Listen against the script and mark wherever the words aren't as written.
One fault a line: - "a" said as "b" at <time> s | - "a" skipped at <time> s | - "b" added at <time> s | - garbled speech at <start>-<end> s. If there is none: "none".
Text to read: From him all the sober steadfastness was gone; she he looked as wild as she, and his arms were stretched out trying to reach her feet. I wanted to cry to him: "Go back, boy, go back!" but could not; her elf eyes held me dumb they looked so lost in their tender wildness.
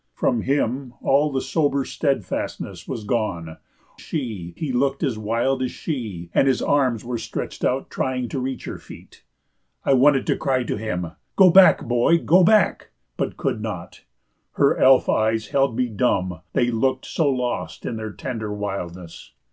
none